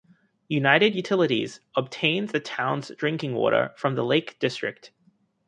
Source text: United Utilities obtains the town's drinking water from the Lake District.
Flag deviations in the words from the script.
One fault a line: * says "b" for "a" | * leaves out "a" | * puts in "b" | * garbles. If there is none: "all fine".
all fine